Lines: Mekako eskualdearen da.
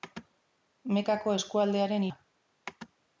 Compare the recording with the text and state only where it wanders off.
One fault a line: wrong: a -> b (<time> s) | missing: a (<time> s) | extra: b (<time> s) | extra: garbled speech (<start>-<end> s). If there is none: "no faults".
no faults